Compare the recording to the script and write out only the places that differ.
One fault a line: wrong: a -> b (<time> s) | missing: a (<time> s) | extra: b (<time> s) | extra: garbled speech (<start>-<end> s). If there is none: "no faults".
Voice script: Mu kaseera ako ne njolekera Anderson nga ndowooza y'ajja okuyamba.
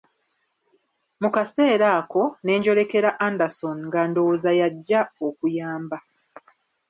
no faults